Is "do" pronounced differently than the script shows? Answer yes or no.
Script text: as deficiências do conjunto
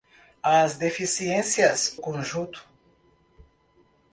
yes